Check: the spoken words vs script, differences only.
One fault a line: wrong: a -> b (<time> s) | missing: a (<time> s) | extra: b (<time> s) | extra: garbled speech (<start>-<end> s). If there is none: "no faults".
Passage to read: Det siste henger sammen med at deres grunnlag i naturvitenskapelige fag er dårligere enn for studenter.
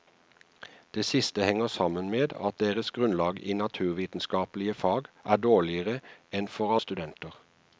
no faults